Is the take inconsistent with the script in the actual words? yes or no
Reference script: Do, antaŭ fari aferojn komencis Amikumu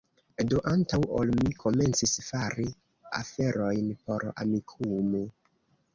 yes